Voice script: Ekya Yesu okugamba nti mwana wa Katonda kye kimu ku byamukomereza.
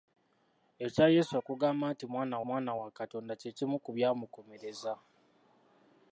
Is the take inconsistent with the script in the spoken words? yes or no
yes